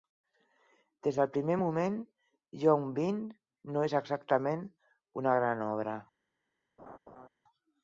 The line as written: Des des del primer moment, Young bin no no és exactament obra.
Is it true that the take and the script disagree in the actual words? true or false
true